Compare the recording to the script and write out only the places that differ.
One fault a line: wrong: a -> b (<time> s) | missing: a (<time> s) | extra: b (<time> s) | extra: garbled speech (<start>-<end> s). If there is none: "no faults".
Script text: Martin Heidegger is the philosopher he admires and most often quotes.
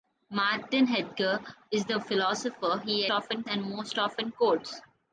wrong: admires -> often (3.1 s)